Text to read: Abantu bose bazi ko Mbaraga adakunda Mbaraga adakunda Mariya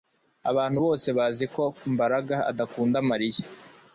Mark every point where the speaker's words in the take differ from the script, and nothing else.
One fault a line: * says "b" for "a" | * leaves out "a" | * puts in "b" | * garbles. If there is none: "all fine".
* leaves out "Mbaraga adakunda"